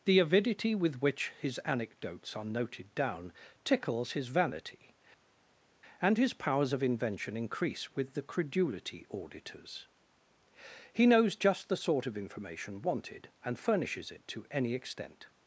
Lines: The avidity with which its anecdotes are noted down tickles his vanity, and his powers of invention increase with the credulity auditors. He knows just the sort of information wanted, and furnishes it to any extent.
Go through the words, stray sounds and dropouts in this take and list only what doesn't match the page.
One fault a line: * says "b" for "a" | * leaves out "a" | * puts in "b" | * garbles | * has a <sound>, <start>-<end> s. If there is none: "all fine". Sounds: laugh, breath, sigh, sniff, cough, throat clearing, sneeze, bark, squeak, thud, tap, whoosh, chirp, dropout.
* says "his" for "its"